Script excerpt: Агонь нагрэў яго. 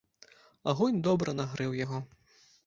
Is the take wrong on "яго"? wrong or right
right